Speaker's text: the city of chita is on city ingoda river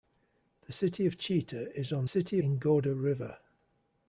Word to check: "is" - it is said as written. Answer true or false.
true